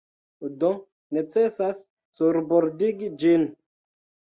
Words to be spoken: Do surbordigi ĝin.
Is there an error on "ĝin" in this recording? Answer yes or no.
no